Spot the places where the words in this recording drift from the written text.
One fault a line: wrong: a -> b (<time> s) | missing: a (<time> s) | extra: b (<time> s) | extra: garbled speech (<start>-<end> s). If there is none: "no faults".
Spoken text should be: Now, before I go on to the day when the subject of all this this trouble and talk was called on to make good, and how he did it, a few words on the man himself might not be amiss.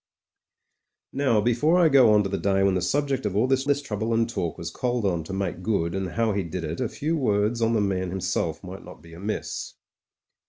no faults